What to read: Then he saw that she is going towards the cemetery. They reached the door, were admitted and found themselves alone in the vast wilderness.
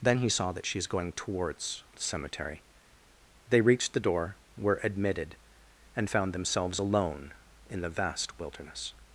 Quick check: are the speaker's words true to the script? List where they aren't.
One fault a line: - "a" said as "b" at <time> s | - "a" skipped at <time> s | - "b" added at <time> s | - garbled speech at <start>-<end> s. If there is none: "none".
none